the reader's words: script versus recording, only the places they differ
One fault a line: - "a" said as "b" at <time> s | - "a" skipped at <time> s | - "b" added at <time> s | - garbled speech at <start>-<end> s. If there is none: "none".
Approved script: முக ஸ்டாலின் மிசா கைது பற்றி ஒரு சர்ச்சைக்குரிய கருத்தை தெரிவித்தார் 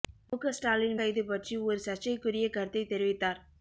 - "மிசா" skipped at 0.9 s